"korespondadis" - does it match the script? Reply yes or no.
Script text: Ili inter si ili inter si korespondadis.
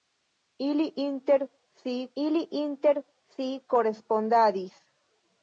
yes